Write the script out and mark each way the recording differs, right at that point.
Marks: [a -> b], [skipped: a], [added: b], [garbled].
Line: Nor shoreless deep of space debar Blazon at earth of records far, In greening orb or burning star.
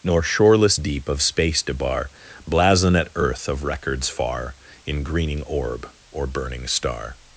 Nor shoreless deep of space debar Blazon at earth of records far, In greening orb or burning star.